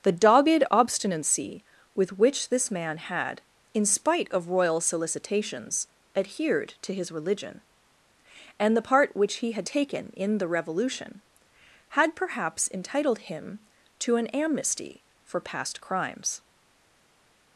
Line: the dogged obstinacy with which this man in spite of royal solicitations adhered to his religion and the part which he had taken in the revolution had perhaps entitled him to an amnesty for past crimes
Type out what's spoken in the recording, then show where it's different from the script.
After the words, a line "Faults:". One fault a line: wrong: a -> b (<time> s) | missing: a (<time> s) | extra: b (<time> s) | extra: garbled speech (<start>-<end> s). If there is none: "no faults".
the dogged obstinacy with which this man had in spite of royal solicitations adhered to his religion and the part which he had taken in the revolution had perhaps entitled him to an amnesty for past crimes
Faults:
extra: had (3.0 s)